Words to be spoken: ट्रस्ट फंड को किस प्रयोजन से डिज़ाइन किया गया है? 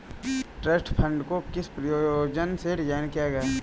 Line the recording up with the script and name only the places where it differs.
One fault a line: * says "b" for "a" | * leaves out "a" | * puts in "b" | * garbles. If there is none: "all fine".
all fine